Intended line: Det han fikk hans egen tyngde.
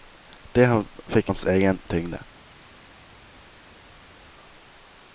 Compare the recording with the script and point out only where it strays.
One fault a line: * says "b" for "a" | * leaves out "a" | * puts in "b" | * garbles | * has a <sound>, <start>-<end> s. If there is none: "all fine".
all fine